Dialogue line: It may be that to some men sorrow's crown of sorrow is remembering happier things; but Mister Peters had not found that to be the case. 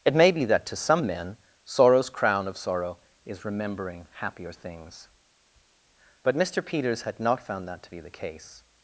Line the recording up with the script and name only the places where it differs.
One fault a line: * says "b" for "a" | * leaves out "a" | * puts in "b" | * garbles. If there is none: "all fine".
all fine